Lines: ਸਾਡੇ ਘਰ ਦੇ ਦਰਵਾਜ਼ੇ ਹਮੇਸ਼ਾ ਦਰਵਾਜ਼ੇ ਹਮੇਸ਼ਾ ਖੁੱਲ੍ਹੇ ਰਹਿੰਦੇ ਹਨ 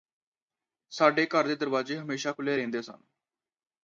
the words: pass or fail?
fail